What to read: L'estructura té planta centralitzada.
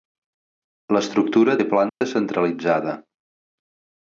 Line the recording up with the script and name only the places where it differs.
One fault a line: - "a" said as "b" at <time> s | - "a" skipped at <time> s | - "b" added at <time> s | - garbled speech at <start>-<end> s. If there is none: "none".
none